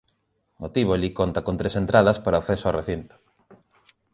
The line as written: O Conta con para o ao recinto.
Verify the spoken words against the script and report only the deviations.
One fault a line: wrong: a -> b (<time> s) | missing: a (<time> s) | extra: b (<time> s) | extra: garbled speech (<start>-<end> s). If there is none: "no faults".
extra: Tívoli (0.7 s)
extra: tres entradas (1.6 s)
extra: acceso (2.4 s)